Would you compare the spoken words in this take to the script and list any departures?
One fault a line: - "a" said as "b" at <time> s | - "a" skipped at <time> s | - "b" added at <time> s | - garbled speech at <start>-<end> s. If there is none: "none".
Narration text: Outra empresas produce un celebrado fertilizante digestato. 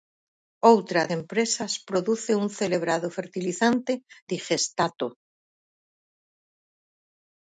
none